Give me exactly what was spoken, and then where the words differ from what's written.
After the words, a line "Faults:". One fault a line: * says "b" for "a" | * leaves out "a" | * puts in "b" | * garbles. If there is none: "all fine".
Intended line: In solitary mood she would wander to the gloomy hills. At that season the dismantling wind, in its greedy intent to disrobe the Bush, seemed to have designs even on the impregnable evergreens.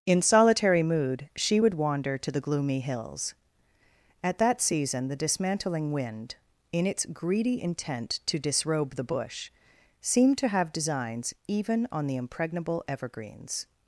In solitary mood she would wander to the gloomy hills. At that season the dismantling wind, in its greedy intent to disrobe the Bush, seemed to have designs even on the impregnable evergreens.
Faults:
all fine